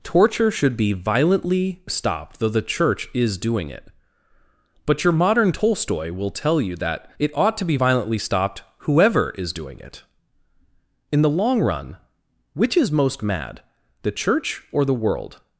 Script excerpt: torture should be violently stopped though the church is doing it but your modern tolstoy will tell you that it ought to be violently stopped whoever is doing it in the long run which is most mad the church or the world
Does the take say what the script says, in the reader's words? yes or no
yes